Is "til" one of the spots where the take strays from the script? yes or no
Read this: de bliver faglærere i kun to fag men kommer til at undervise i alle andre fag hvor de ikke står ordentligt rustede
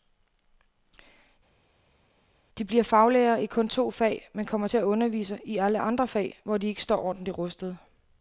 no